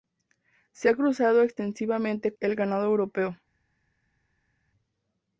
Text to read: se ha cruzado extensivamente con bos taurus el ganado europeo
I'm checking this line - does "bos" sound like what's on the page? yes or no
no